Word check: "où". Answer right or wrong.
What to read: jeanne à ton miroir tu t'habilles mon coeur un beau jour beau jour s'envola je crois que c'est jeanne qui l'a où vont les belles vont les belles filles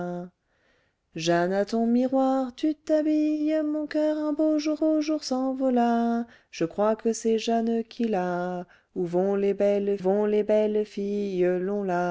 right